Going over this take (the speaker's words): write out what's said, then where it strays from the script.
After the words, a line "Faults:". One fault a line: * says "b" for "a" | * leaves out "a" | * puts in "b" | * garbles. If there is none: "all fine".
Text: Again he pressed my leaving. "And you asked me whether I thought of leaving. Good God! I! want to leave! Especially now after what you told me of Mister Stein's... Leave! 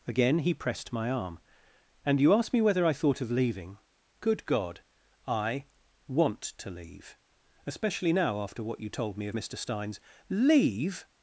Again he pressed my arm. "And you asked me whether I thought of leaving. Good God! I! want to leave! Especially now after what you told me of Mister Stein's... Leave!
Faults:
* says "arm" for "leaving"